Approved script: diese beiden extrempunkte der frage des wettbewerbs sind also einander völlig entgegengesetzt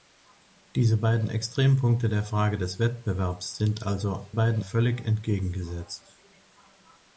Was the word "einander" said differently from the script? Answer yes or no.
yes